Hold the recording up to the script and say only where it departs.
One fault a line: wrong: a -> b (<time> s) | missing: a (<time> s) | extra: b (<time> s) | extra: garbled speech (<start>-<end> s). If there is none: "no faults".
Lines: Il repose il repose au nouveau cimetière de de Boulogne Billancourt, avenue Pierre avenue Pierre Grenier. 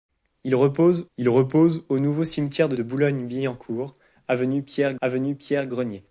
no faults